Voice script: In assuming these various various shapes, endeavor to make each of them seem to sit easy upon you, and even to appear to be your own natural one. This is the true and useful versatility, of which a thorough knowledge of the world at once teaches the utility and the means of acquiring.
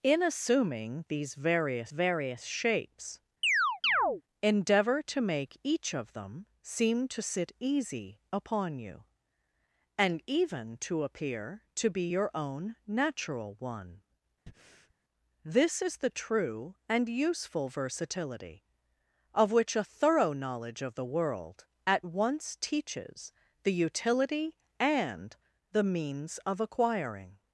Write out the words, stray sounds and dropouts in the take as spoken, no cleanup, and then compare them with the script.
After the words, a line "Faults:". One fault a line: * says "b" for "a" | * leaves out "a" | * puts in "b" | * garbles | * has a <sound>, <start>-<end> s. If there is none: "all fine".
In assuming these various various shapes, endeavor to make each of them seem to sit easy upon you, and even to appear to be your own natural one. This is the true and useful versatility, of which a thorough knowledge of the world at once teaches the utility and the means of acquiring.
Faults:
* has a chirp, 3.4-4.2 s
* has a breath, 14.5-14.9 s